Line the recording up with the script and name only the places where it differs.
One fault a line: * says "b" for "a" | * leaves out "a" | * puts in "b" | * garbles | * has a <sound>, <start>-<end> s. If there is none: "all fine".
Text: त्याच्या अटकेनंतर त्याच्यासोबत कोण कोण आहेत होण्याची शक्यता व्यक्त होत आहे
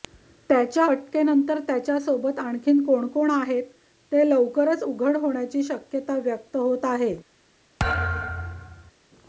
* puts in "आणखी"
* puts in "ते लवकरच उघड"
* has a thud, 7.8-8.9 s